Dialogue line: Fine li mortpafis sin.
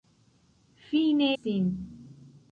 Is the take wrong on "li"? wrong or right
wrong